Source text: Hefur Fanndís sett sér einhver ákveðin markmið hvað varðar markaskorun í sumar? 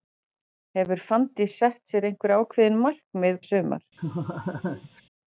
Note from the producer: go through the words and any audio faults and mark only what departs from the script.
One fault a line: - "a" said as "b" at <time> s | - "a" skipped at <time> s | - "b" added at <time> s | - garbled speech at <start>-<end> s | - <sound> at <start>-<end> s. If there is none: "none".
- "hvað varðar markaskorun" skipped at 3.4 s
- laugh at 4.0-5.0 s